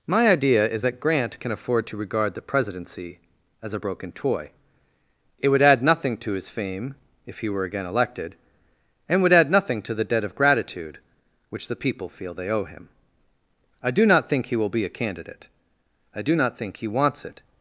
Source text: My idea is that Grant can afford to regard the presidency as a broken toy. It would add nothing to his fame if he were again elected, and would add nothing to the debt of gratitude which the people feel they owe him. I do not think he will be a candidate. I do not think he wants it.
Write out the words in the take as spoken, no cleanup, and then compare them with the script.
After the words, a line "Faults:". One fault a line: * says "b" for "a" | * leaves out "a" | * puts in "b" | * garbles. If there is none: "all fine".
My idea is that Grant can afford to regard the presidency as a broken toy. It would add nothing to his fame if he were again elected, and would add nothing to the debt of gratitude which the people feel they owe him. I do not think he will be a candidate. I do not think he wants it.
Faults:
all fine